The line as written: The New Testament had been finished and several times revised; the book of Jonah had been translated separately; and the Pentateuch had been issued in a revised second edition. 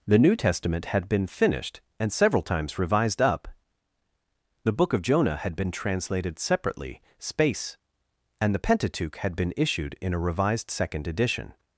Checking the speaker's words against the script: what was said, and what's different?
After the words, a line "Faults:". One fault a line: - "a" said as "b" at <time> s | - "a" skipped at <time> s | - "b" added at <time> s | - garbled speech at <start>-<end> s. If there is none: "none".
The New Testament had been finished and several times revised; up the book of Jonah had been translated separately; space and the Pentateuch had been issued in a revised second edition.
Faults:
- "up" added at 3.2 s
- "space" added at 7.2 s